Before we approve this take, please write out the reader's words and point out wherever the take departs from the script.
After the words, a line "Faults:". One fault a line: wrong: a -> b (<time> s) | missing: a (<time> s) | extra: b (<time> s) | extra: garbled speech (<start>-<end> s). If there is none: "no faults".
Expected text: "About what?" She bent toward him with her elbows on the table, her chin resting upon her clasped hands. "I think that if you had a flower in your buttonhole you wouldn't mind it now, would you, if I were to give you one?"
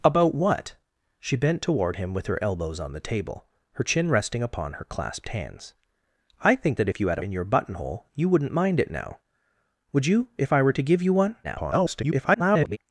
"About what?" She bent toward him with her elbows on the table, her chin resting upon her clasped hands. "I think that if you had in your buttonhole you wouldn't mind it now, would you, if I were to give you one?" [garbled]
Faults:
missing: a flower (7.2 s)
extra: garbled speech (11.4-12.8 s)